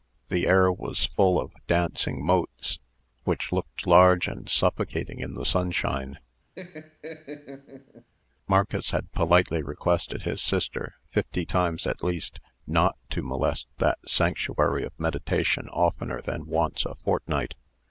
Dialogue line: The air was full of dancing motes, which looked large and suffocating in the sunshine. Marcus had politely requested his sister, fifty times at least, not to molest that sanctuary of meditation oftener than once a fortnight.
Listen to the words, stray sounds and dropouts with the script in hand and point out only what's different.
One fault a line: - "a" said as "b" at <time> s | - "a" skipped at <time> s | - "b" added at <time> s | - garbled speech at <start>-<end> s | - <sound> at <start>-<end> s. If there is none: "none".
- laugh at 6.6-8.1 s